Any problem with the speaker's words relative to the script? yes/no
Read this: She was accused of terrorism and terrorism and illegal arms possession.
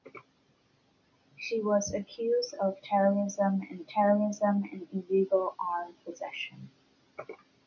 no